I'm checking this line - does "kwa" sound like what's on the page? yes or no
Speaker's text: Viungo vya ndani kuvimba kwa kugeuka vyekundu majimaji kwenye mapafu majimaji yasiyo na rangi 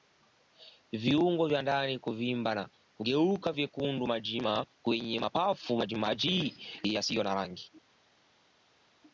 no